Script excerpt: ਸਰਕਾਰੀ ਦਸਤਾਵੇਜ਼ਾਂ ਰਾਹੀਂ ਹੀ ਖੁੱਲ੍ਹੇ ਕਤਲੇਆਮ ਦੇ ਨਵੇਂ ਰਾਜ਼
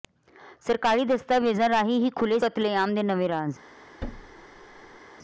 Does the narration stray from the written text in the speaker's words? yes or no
no